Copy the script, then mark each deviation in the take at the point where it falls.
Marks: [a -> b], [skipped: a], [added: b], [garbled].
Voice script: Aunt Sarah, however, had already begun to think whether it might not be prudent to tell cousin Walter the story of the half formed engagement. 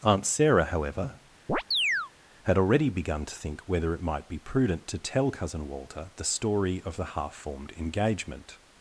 Aunt Sarah, however, had already begun to think whether it might [skipped: not] be prudent to tell cousin Walter the story of the half formed engagement.